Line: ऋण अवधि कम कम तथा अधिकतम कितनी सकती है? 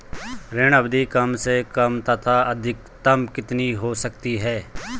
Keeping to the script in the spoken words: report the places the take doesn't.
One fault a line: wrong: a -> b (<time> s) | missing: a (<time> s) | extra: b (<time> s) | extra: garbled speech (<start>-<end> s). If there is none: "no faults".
extra: से (1.4 s)
extra: हो (3.7 s)